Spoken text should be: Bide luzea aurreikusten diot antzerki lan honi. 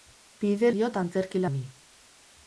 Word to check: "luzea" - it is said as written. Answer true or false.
false